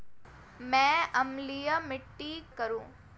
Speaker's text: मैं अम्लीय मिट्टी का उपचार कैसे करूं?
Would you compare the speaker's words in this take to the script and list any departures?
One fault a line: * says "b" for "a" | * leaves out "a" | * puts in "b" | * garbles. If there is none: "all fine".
* leaves out "का उपचार कैसे"